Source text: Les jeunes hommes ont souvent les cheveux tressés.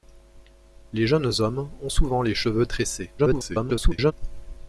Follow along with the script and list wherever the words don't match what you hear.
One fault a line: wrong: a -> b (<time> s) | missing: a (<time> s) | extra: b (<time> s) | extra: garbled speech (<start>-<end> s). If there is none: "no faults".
extra: garbled speech (3.2-4.1 s)